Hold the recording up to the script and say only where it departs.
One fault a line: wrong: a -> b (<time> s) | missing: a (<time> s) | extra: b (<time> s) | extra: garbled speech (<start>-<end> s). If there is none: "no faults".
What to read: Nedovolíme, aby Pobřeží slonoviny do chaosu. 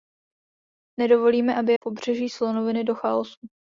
no faults